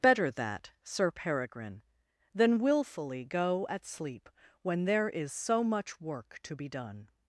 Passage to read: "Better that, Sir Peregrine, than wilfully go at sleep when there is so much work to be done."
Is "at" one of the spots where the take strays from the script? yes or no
no